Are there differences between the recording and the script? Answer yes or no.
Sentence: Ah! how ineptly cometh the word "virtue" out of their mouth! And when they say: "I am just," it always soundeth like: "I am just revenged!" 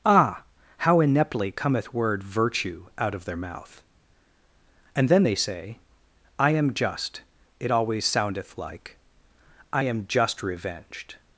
yes